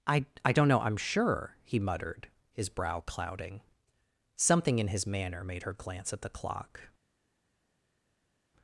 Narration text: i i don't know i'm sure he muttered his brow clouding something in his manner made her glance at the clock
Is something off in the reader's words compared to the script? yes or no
no